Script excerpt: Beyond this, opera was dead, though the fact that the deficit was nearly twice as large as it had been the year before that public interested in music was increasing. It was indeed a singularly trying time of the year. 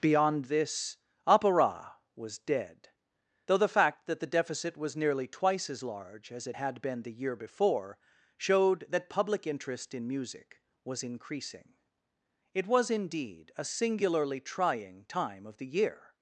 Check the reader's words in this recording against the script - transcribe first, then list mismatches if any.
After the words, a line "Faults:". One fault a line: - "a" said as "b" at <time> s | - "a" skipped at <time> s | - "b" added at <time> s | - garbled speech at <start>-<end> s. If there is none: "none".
Beyond this, opera was dead, though the fact that the deficit was nearly twice as large as it had been the year before showed that public interest in music was increasing. It was indeed a singularly trying time of the year.
Faults:
- "showed" added at 8.4 s
- "interested" said as "interest" at 9.4 s